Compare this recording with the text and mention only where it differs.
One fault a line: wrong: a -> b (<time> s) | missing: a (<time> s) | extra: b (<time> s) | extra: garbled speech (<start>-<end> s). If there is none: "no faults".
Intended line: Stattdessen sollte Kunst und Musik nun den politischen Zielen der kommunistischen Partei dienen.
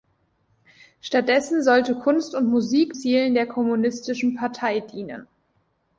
missing: nun den politischen (3.0 s)